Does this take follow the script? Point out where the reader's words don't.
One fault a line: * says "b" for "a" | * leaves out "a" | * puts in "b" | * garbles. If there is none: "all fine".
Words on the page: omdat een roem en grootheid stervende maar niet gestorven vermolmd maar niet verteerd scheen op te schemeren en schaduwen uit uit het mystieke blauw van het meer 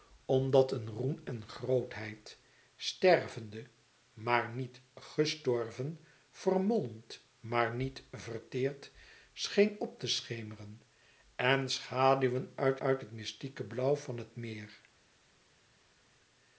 all fine